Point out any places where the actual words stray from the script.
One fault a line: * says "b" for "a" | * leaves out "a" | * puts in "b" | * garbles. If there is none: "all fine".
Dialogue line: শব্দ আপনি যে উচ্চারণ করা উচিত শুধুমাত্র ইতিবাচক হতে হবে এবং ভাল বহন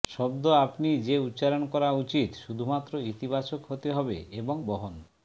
* leaves out "ভাল"